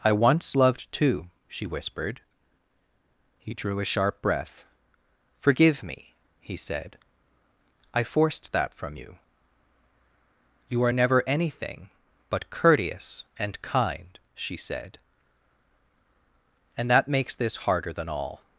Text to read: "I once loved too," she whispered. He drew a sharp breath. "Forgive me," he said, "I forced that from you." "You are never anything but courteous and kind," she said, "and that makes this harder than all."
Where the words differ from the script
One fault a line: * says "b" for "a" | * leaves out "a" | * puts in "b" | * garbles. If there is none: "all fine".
all fine